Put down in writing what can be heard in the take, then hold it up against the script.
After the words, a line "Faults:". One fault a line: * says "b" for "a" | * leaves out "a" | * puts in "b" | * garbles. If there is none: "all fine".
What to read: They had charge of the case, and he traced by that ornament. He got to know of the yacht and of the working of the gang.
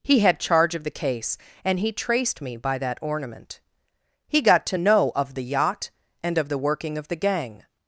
He had charge of the case, and he traced me by that ornament. He got to know of the yacht and of the working of the gang.
Faults:
* says "He" for "They"
* puts in "me"